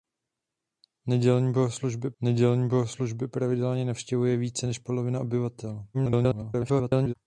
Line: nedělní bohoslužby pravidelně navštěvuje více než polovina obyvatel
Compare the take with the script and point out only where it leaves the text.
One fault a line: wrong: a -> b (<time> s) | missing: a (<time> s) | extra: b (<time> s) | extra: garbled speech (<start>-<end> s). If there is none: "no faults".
extra: nedělní bohoslužby (2.2 s)
extra: garbled speech (5.9-7.1 s)